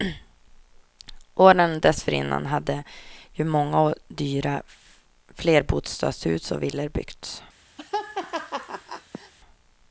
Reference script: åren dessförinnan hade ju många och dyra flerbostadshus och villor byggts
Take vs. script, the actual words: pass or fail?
pass